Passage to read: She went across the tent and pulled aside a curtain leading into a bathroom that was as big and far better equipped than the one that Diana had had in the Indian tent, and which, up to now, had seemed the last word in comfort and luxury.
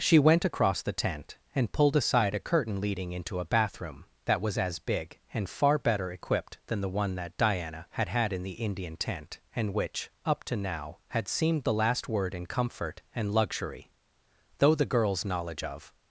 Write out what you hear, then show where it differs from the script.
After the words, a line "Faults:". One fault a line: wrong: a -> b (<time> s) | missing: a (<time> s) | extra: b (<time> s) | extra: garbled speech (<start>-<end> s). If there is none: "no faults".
She went across the tent and pulled aside a curtain leading into a bathroom that was as big and far better equipped than the one that Diana had had in the Indian tent, and which, up to now, had seemed the last word in comfort and luxury. Though the girl's knowledge of
Faults:
extra: Though the girl's knowledge of (14.6 s)